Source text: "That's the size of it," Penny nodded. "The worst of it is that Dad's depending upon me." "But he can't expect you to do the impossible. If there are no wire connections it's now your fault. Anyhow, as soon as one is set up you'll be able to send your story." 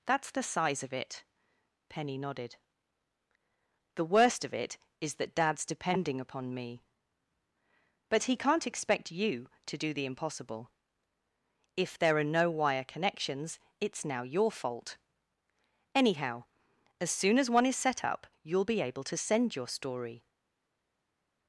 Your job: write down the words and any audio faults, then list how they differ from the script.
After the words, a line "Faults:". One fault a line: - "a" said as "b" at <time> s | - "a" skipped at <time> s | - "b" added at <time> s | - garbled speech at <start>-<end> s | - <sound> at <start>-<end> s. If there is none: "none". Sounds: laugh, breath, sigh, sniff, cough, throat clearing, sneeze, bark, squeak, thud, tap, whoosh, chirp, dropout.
"That's the size of it," Penny nodded. "The worst of it is that Dad's depending upon me." "But he can't expect you to do the impossible. If there are no wire connections it's now your fault. Anyhow, as soon as one is set up you'll be able to send your story."
Faults:
none